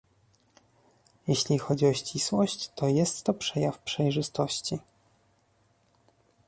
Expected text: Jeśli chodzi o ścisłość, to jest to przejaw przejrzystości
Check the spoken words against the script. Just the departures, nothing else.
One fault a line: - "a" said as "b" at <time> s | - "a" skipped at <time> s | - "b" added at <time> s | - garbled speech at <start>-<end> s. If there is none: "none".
none